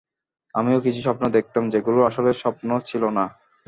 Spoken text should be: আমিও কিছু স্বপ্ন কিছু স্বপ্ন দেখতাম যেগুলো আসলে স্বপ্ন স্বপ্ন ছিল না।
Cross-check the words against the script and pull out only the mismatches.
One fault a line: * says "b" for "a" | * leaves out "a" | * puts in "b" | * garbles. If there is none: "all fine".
* leaves out "কিছু স্বপ্ন"
* leaves out "স্বপ্ন"